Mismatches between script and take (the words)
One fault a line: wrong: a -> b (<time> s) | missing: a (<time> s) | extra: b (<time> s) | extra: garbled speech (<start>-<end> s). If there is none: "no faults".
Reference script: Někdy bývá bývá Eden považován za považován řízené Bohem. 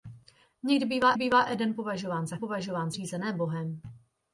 no faults